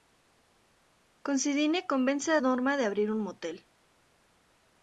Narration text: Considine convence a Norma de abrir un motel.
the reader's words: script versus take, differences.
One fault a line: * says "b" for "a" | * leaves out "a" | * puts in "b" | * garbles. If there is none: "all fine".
all fine